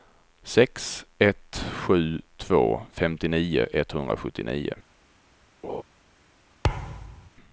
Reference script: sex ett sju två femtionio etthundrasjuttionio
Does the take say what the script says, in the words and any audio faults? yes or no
no